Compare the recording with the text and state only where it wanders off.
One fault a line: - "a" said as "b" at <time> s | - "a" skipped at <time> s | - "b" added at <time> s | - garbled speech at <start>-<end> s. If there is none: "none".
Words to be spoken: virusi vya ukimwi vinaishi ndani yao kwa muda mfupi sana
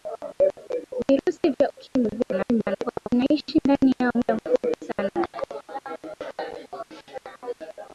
- garbled speech at 2.2-3.1 s
- "kwa" skipped at 4.1 s